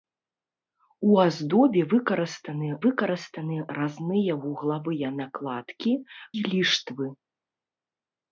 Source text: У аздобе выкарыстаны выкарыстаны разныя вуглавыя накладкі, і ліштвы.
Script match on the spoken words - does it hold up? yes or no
yes